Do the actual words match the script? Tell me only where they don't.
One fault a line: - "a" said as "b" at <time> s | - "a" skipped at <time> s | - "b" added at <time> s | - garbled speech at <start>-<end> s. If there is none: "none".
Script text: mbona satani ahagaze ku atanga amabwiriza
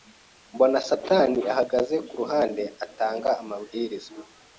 - "ruhande" added at 2.2 s